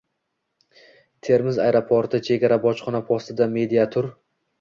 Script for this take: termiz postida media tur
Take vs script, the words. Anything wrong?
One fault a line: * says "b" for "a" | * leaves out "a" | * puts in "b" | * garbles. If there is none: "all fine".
* puts in "aeroporti chegara bojxona"